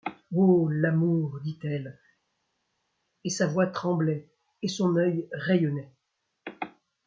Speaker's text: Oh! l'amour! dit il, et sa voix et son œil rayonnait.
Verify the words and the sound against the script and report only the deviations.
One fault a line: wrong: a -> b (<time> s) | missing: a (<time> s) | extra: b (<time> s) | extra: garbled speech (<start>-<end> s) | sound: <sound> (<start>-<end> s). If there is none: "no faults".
wrong: il -> elle (1.6 s)
extra: tremblait (3.7 s)